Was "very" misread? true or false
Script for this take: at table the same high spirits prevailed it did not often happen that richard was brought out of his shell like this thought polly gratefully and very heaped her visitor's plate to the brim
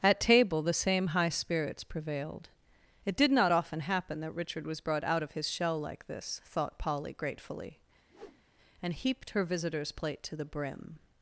true